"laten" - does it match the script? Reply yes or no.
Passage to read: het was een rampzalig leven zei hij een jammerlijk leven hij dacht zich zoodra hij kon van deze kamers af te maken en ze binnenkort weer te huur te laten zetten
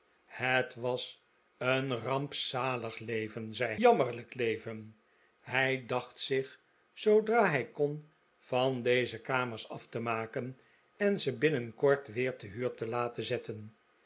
yes